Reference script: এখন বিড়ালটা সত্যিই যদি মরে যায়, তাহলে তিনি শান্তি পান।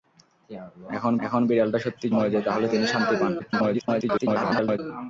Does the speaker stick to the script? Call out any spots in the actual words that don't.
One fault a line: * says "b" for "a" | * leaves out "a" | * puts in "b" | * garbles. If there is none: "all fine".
* puts in "এখন"
* leaves out "যদি"
* garbles